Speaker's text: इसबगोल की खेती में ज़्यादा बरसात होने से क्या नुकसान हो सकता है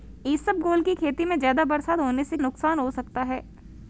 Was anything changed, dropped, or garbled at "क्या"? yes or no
yes